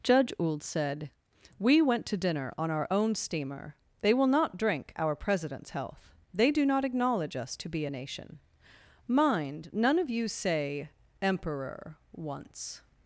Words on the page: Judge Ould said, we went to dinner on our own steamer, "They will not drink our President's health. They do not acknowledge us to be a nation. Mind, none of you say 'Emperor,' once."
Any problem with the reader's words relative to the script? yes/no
no